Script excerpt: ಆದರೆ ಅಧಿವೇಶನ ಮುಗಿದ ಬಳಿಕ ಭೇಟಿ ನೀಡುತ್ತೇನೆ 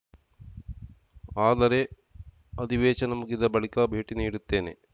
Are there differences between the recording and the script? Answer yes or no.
no